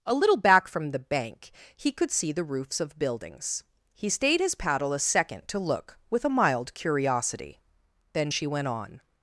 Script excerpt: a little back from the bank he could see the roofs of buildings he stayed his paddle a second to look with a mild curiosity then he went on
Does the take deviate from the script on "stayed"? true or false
false